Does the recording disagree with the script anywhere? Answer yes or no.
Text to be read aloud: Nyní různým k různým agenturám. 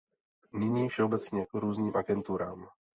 yes